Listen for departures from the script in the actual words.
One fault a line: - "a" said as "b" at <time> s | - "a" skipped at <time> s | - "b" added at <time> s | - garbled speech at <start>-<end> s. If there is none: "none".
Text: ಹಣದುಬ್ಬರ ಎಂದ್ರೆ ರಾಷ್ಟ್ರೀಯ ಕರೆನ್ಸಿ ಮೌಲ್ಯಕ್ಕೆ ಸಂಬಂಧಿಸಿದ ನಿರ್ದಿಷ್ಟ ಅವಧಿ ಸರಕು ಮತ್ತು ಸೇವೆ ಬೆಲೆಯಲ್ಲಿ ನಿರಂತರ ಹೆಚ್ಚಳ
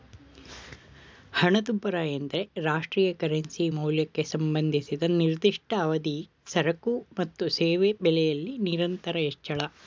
none